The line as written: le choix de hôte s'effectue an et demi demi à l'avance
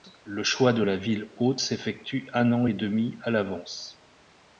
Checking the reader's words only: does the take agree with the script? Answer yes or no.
no